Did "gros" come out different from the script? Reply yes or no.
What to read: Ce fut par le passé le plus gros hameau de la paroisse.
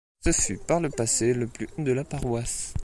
yes